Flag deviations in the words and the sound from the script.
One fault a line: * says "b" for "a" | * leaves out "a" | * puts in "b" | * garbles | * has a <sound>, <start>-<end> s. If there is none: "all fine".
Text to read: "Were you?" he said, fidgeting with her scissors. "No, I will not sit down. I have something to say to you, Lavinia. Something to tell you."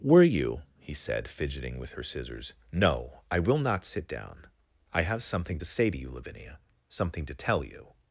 all fine